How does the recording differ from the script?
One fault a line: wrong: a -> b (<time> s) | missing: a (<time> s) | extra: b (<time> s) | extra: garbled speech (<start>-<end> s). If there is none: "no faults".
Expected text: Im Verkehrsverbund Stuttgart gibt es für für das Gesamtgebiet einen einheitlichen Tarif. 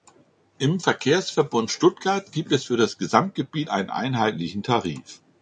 missing: für (2.8 s)